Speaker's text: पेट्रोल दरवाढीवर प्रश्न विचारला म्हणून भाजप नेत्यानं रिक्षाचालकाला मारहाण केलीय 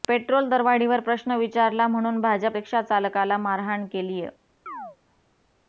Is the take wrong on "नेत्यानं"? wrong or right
wrong